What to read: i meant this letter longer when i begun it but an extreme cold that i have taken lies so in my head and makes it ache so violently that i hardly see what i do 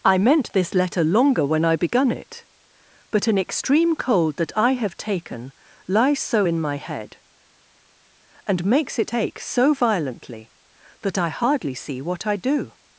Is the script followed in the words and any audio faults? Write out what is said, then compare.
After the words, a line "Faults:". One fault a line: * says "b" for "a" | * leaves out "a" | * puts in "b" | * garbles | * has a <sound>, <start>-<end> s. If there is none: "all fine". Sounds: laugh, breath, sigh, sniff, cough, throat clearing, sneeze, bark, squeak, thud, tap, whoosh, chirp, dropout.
i meant this letter longer when i begun it but an extreme cold that i have taken lies so in my head and makes it ache so violently that i hardly see what i do
Faults:
all fine